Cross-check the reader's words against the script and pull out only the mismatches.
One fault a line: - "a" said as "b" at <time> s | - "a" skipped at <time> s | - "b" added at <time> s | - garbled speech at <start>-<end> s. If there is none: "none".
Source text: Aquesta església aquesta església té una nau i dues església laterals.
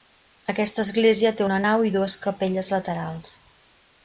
- "aquesta església" skipped at 1.3 s
- "església" said as "capelles" at 2.3 s